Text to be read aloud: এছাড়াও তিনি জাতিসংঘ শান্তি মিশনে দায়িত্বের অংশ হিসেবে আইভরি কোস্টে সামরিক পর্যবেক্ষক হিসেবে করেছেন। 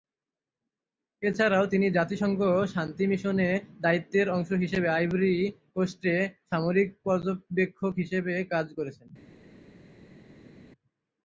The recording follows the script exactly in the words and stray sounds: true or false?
false